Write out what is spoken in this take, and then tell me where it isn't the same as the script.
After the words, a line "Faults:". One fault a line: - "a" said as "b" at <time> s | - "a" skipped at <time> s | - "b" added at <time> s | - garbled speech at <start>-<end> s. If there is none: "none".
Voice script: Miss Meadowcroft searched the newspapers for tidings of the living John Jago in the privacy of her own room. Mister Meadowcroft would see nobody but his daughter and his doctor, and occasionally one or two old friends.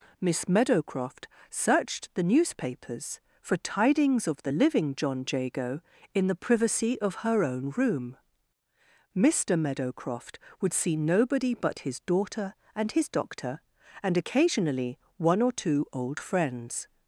Miss Meadowcroft searched the newspapers for tidings of the living John Jago in the privacy of her own room. Mister Meadowcroft would see nobody but his daughter and his doctor, and occasionally one or two old friends.
Faults:
none